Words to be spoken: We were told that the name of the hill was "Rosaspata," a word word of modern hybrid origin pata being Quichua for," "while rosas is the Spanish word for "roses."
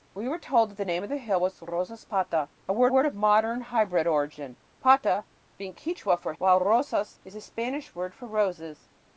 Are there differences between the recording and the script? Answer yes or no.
no